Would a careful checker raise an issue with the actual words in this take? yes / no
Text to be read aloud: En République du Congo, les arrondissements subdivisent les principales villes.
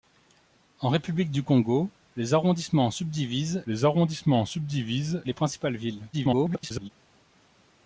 yes